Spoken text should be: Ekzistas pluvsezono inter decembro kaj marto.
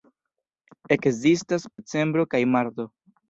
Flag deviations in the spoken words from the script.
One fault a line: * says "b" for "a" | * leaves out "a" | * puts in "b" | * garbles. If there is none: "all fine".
* leaves out "pluvsezono inter"